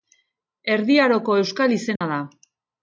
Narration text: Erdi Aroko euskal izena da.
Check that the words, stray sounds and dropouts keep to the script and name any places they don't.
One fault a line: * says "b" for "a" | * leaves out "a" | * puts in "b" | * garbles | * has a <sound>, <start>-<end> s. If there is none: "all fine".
* has a dropout, 2.0-2.0 s